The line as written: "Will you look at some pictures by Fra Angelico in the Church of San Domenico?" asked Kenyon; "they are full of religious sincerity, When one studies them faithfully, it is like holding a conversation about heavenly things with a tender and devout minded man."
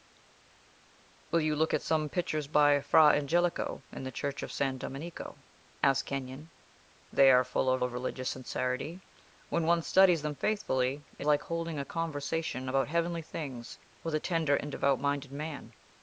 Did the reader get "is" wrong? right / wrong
wrong